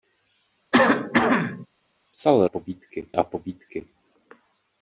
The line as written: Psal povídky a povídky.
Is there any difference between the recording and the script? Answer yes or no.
no